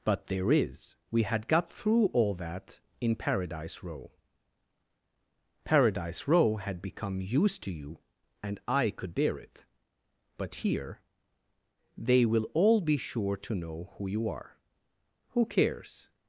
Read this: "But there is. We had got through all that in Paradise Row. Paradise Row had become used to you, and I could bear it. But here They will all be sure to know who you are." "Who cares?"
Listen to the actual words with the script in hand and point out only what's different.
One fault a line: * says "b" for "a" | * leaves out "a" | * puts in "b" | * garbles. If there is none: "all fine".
all fine